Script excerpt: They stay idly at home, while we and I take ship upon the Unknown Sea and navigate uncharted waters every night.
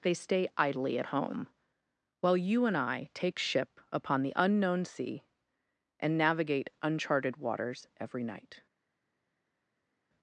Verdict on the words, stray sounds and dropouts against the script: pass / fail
fail